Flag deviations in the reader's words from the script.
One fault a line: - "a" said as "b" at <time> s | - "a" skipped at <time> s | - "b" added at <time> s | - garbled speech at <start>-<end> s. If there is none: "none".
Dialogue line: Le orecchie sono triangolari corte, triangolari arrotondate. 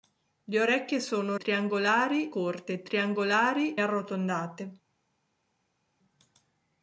none